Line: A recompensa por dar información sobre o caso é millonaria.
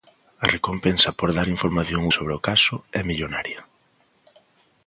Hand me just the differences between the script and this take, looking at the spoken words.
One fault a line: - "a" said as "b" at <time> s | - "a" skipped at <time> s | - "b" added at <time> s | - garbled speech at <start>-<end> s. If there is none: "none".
none